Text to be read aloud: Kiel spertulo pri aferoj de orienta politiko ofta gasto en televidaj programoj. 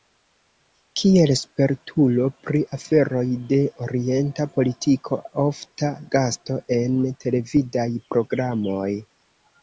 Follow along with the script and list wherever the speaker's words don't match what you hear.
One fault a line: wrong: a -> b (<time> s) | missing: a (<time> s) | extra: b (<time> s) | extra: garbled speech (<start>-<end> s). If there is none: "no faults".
no faults